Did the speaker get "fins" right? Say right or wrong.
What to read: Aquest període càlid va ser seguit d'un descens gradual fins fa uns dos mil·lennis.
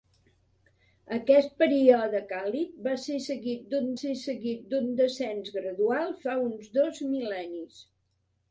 wrong